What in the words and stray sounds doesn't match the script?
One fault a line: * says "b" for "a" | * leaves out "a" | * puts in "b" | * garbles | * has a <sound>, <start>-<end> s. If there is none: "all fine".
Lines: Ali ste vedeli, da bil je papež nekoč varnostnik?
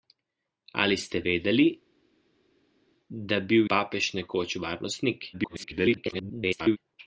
* leaves out "je"
* garbles